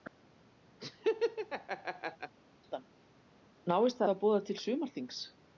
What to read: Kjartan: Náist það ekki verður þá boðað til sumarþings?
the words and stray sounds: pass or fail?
fail